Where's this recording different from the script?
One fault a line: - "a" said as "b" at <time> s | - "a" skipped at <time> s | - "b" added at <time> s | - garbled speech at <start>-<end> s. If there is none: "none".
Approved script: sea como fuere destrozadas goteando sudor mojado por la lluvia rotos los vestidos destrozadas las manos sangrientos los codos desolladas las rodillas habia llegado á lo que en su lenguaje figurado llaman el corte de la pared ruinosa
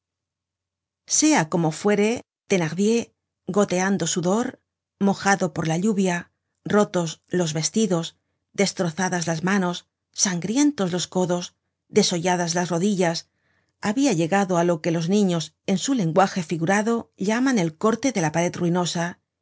- "destrozadas" said as "thenardier" at 2.5 s
- "los niños" added at 14.9 s